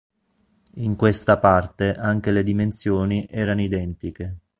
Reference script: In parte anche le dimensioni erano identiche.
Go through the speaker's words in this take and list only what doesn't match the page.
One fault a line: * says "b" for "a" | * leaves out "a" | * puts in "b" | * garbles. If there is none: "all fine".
* puts in "questa"